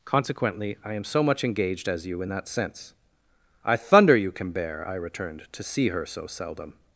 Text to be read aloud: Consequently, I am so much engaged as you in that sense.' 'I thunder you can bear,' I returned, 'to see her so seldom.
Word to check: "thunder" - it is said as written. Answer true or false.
true